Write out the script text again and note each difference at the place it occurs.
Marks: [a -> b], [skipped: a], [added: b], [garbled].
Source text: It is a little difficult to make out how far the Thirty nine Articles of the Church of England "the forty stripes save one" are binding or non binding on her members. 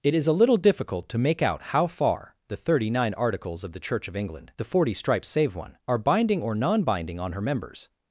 It is a little difficult to make out how far the Thirty nine Articles of the Church of England "the forty stripes save one" are binding or non binding on her members.